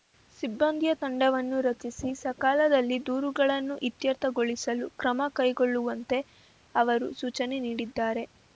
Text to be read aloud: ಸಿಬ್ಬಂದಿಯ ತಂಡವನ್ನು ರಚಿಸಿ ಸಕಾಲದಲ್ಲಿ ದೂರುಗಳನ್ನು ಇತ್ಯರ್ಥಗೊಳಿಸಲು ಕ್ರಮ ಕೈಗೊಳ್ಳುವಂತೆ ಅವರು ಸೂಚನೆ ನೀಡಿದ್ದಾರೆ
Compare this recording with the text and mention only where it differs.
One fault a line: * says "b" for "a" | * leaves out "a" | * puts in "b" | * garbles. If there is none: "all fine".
all fine